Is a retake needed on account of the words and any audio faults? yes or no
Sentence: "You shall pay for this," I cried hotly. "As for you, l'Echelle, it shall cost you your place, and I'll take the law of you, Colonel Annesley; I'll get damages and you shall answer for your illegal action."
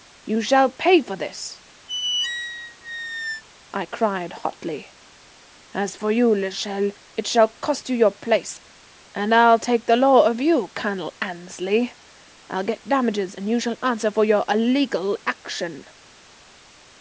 yes